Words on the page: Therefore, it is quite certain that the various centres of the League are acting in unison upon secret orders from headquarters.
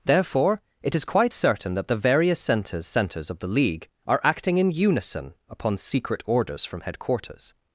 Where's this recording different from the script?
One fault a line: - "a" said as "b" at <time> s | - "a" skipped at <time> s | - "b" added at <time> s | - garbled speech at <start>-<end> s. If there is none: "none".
- "centres" added at 2.9 s